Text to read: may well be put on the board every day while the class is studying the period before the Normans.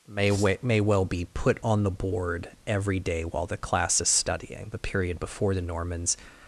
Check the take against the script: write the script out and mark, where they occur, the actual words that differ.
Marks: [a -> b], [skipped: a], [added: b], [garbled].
may [added: may] well be put on the board every day while the class is studying the period before the Normans.